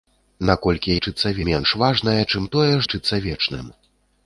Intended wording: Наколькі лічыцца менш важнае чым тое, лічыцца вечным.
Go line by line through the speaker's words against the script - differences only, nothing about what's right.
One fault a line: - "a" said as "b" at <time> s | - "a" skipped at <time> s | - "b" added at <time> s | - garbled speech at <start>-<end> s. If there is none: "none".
none